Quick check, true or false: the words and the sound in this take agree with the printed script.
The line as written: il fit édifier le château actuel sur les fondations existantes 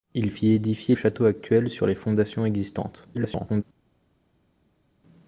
false